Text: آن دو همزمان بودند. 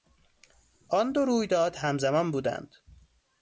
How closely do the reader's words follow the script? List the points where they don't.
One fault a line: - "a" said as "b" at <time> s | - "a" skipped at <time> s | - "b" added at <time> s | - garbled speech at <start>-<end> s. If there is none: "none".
- "رویداد" added at 1.2 s